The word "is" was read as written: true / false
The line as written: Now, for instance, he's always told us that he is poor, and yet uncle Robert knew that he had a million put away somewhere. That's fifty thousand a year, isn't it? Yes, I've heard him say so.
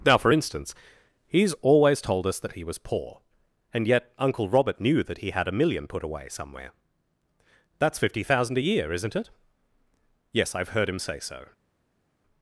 false